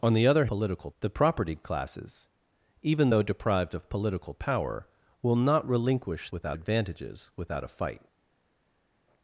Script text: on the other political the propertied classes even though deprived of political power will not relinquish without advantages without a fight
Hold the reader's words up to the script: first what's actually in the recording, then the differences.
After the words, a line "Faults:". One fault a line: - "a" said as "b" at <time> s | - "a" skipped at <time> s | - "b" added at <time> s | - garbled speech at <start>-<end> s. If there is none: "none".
on the other political the propertied classes even though deprived of political power will not relinquish without advantages without a fight
Faults:
none